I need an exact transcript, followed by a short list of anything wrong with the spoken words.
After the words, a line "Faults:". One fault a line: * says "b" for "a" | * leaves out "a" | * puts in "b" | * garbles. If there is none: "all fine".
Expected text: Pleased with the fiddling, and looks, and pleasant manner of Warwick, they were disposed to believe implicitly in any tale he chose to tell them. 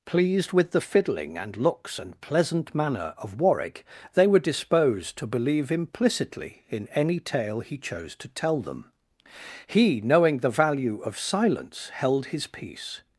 Pleased with the fiddling, and looks, and pleasant manner of Warwick, they were disposed to believe implicitly in any tale he chose to tell them. He, knowing the value of silence, held his peace
Faults:
* puts in "He knowing the value of silence held his peace"